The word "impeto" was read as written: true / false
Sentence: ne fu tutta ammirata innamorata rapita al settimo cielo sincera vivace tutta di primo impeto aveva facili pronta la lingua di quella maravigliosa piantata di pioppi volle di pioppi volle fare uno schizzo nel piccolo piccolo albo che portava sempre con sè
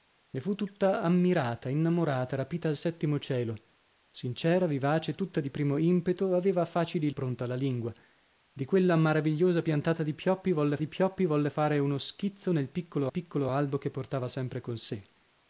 true